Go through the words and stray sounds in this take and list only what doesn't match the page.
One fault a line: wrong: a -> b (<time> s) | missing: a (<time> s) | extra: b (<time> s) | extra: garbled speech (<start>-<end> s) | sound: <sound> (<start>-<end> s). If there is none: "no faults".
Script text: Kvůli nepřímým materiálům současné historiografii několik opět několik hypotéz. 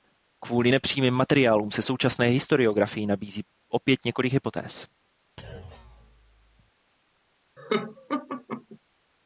extra: se (1.7 s)
wrong: několik -> nabízí (3.1 s)
sound: thud (5.4-6.7 s)
sound: laugh (7.6-8.8 s)